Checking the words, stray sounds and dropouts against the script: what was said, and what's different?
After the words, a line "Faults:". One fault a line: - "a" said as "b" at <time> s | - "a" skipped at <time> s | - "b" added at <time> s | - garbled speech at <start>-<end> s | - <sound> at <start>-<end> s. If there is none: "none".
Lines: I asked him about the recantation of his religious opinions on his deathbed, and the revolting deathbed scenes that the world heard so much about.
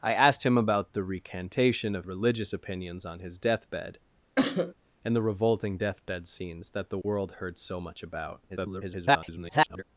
I asked him about the recantation of religious opinions on his deathbed, and the revolting deathbed scenes that the world heard so much about. [garbled]
Faults:
- "his" skipped at 2.1 s
- cough at 4.4-4.7 s
- dropout at 7.0-7.0 s
- garbled speech at 8.5-9.8 s